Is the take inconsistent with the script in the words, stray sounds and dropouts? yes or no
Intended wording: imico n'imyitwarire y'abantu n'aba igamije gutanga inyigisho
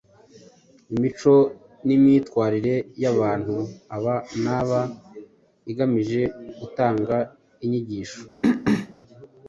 yes